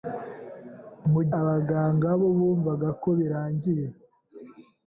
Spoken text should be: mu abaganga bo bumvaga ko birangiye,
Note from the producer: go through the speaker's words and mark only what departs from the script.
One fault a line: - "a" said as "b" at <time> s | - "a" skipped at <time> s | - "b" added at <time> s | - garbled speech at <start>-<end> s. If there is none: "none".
none